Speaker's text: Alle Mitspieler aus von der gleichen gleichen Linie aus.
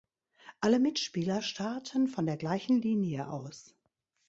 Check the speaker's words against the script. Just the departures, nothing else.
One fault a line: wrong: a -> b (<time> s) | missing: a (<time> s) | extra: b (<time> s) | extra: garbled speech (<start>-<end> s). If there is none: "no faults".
wrong: aus -> starten (1.4 s)
missing: gleichen (2.8 s)